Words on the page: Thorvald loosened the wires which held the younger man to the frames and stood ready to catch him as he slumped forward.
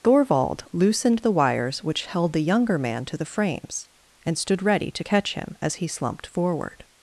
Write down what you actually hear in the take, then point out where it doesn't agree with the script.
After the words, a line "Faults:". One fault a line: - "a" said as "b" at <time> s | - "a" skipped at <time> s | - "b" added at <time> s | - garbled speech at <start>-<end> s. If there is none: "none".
Thorvald loosened the wires which held the younger man to the frames and stood ready to catch him as he slumped forward.
Faults:
none